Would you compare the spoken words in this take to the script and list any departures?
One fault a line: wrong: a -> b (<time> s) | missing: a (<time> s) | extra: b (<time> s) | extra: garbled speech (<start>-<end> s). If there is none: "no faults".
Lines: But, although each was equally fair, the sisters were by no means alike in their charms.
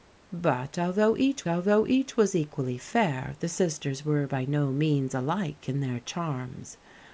extra: although each (1.5 s)